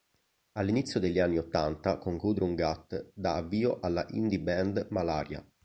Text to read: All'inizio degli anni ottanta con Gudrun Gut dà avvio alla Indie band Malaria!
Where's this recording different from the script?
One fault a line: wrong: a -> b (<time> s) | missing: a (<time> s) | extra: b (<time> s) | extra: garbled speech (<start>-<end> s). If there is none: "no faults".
no faults